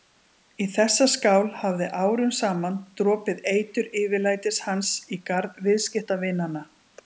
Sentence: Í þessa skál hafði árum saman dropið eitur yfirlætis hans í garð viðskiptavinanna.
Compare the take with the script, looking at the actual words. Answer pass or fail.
pass